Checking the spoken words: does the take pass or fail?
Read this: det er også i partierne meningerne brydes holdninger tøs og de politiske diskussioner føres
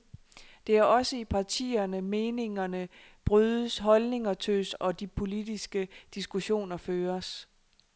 pass